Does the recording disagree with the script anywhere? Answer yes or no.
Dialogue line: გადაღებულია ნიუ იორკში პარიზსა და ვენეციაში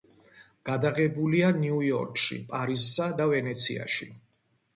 no